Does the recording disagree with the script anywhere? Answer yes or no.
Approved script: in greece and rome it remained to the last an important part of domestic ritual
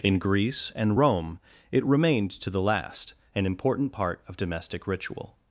no